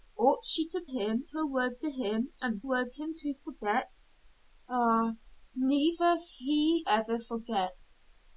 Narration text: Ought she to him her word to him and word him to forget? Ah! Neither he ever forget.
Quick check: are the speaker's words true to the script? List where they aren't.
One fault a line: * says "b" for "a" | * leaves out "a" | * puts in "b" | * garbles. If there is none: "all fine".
all fine